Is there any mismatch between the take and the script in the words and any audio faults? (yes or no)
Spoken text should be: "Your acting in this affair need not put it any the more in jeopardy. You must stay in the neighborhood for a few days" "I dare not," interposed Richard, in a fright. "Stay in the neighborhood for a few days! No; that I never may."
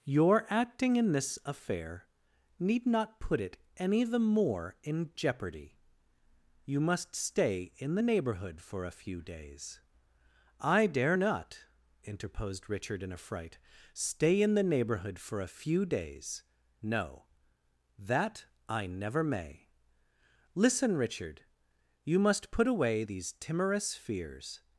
yes